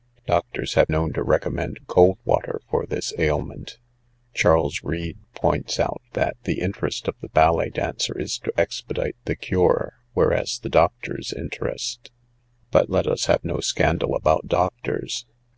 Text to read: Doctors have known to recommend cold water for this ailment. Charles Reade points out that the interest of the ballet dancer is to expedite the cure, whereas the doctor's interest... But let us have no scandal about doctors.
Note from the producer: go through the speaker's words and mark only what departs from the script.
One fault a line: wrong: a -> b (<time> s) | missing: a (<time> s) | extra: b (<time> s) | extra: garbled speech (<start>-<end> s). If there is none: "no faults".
no faults